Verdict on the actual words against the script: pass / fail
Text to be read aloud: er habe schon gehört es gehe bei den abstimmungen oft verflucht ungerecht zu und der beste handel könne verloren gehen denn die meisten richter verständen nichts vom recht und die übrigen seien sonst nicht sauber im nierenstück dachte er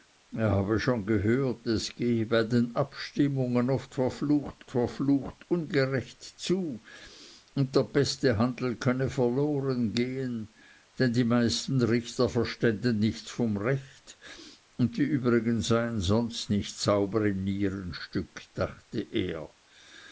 fail